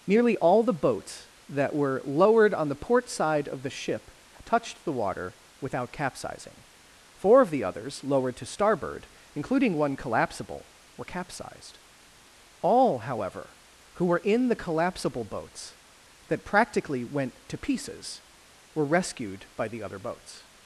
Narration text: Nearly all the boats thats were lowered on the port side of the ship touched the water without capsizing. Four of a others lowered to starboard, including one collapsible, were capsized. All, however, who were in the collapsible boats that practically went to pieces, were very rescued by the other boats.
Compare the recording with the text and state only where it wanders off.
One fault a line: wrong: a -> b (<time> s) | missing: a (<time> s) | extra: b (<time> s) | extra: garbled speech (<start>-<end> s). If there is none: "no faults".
wrong: thats -> that (1.5 s)
wrong: a -> the (7.5 s)
missing: very (18.9 s)